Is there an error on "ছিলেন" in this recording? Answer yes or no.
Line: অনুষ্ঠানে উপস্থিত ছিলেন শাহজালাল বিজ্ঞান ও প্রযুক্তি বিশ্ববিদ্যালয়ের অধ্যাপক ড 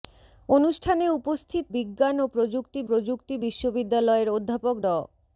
yes